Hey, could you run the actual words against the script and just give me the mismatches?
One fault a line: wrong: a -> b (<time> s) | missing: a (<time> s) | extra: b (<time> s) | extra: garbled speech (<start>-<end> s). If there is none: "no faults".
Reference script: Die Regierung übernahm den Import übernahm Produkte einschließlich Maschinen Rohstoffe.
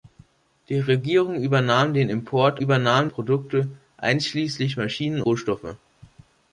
no faults